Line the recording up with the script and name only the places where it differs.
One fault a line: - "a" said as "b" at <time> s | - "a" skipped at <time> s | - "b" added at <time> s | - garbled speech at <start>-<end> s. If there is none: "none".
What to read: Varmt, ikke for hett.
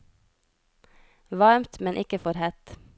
- "men" added at 1.8 s